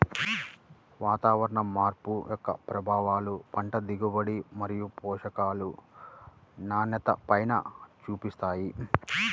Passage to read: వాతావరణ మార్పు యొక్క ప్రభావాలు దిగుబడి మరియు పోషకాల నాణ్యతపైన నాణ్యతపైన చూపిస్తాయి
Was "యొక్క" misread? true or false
false